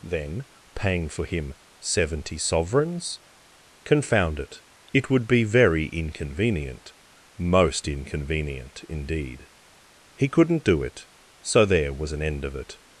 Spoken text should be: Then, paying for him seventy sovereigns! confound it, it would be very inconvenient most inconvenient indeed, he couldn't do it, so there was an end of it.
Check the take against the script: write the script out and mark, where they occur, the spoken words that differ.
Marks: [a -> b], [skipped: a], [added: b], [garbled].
Then, paying for him seventy sovereigns! confound it, it would be very inconvenient most inconvenient indeed, he couldn't do it, so there was an end of it.